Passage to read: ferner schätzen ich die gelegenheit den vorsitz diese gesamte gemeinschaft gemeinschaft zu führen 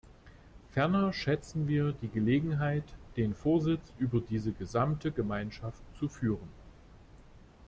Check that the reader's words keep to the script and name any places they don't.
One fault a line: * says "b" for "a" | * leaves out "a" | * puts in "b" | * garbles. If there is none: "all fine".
* says "wir" for "ich"
* puts in "über"
* leaves out "gemeinschaft"